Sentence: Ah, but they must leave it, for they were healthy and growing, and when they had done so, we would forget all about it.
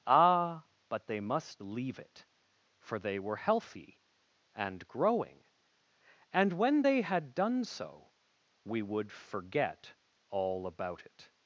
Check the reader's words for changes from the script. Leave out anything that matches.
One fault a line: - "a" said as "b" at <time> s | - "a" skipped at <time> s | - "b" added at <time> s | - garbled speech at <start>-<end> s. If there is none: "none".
none